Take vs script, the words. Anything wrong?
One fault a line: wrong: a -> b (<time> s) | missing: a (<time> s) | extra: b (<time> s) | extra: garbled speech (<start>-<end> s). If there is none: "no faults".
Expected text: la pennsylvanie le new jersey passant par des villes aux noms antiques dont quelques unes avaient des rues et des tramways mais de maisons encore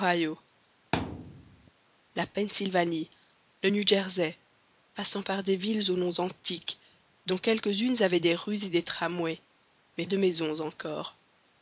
no faults